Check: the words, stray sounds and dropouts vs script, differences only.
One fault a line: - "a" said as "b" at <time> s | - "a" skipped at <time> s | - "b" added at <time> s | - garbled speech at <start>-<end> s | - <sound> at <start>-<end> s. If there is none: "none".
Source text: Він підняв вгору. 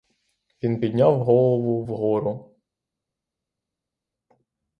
- "голову" added at 1.2 s